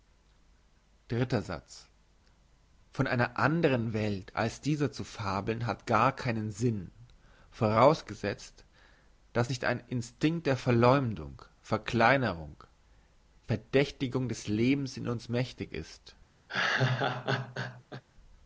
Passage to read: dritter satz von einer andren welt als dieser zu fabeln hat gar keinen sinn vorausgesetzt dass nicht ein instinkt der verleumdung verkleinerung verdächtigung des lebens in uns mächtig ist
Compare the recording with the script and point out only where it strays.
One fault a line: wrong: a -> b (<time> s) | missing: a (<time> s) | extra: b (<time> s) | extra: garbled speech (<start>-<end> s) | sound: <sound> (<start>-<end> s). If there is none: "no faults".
sound: laugh (16.5-18.0 s)